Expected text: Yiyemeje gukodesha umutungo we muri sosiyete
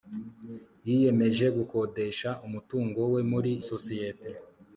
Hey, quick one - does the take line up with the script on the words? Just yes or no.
yes